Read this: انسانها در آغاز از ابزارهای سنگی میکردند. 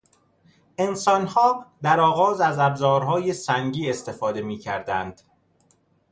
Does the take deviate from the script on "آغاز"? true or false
false